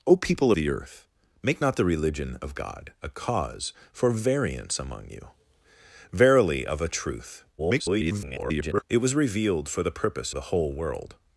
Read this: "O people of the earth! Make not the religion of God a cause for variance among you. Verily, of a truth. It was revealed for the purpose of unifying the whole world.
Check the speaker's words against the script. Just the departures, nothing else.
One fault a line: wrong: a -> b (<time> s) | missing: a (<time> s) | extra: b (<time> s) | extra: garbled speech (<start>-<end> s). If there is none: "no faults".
missing: of (0.5 s)
extra: garbled speech (7.6-8.8 s)
missing: of unifying (10.3 s)